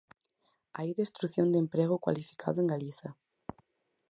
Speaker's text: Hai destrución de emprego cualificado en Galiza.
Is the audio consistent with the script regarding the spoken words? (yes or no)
yes